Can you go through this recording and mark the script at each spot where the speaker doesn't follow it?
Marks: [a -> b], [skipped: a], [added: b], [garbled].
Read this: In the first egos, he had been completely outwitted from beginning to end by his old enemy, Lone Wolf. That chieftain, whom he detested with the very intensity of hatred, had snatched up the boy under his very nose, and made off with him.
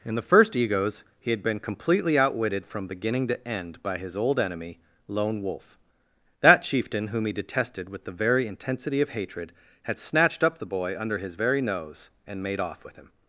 In the first egos, he had been completely outwitted from beginning to end by his old enemy, Lone Wolf. That chieftain, whom he detested with the very intensity of hatred, had snatched up the boy under his very nose, and made off with him.